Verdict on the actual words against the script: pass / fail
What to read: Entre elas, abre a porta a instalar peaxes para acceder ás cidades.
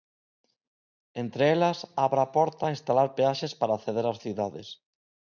pass